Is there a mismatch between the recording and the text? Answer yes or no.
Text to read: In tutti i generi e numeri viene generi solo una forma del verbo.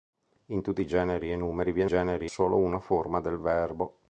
no